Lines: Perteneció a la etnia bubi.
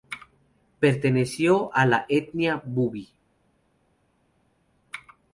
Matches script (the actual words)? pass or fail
pass